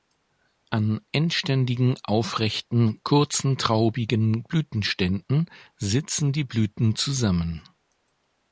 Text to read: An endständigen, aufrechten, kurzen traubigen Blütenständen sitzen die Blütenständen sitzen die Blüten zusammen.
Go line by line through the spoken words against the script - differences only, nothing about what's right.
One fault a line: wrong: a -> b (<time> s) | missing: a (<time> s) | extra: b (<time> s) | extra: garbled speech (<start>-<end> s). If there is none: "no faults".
missing: Blütenständen sitzen die (6.5 s)